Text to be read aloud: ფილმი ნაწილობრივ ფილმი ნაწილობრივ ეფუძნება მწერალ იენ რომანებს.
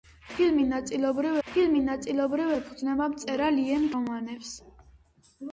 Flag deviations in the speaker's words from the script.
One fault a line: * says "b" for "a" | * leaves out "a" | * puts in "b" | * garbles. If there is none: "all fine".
all fine